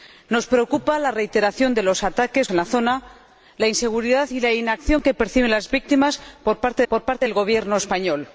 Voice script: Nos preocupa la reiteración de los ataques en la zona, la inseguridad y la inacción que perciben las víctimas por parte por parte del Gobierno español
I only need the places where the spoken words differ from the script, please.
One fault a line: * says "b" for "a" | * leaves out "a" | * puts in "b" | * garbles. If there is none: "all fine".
all fine